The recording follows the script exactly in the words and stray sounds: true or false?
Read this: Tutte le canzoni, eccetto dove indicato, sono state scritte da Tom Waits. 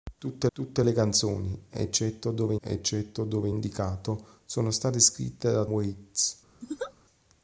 false